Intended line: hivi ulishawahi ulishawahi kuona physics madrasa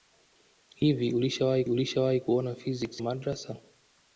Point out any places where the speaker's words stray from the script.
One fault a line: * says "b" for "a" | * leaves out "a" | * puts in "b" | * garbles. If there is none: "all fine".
all fine